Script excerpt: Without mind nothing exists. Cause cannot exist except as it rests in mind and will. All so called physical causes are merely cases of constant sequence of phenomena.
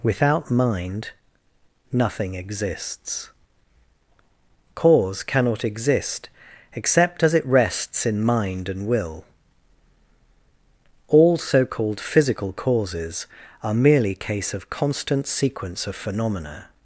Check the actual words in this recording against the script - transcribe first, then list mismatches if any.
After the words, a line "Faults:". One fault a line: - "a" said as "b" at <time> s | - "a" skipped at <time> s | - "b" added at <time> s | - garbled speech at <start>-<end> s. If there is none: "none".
Without mind nothing exists. Cause cannot exist except as it rests in mind and will. All so called physical causes are merely case of constant sequence of phenomena.
Faults:
- "cases" said as "case" at 14.2 s